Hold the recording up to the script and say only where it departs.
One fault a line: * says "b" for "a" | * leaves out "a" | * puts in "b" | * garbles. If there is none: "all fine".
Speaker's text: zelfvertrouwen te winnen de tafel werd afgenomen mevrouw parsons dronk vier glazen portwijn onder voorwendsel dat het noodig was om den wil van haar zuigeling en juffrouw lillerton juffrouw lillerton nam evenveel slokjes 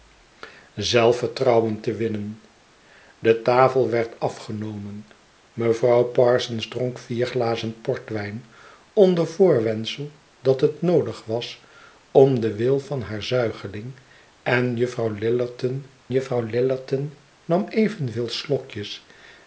all fine